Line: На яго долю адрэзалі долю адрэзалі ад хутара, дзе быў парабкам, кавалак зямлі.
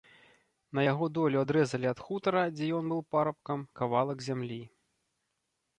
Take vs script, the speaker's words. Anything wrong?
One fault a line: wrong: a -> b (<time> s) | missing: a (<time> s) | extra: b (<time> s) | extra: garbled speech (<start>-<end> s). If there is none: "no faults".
missing: долю адрэзалі (1.9 s)
extra: ён (2.8 s)